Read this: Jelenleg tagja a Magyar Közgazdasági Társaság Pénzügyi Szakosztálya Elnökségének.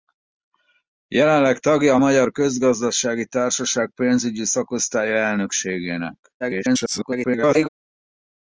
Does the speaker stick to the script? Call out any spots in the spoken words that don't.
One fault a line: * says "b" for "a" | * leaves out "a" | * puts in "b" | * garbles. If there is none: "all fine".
* garbles